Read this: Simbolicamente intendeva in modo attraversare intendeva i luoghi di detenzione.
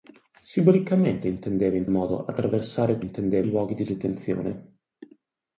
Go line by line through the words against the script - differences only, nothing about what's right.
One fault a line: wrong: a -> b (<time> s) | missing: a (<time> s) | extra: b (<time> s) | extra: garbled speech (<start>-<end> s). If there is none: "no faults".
no faults